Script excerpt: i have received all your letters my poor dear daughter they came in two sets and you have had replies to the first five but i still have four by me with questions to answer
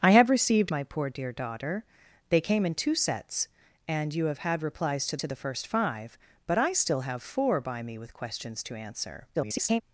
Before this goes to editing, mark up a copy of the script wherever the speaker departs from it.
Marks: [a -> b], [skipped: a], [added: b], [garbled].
i have received [skipped: all your letters] my poor dear daughter they came in two sets and you have had replies to [added: to] the first five but i still have four by me with questions to answer [garbled]